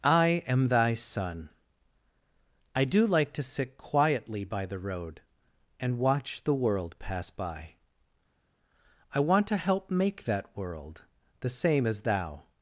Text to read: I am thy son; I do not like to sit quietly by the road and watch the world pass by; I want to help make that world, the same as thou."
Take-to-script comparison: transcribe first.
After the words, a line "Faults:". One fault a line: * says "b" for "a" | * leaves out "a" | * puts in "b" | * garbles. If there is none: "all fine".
I am thy son; I do like to sit quietly by the road and watch the world pass by; I want to help make that world, the same as thou."
Faults:
* leaves out "not"